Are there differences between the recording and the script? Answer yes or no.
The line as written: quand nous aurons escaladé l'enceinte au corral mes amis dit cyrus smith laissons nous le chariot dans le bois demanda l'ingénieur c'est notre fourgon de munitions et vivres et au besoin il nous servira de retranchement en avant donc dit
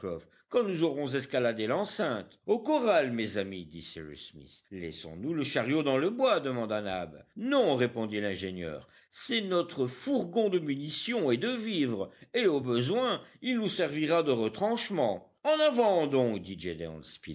yes